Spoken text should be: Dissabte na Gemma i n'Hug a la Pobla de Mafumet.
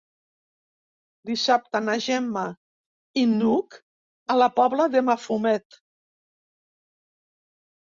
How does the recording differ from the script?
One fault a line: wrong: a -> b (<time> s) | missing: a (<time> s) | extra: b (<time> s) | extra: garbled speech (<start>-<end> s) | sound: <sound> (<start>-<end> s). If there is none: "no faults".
no faults